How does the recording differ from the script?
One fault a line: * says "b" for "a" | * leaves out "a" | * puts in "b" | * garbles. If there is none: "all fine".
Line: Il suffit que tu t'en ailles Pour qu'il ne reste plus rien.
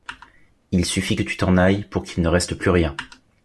all fine